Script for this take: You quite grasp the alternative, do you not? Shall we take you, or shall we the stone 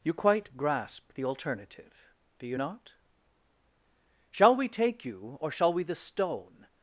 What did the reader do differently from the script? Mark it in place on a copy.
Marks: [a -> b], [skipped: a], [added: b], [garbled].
You quite grasp the alternative, do you not? Shall we take you, or shall we the stone